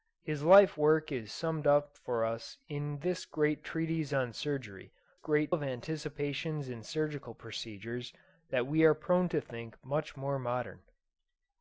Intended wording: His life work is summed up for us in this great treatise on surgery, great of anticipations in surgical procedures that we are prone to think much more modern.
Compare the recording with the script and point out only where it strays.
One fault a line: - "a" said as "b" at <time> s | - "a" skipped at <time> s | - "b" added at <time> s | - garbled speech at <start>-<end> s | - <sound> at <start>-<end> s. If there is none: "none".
none